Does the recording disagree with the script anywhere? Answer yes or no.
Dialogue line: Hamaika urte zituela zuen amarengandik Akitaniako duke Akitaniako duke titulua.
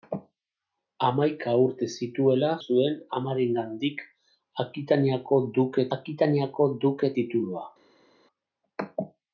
no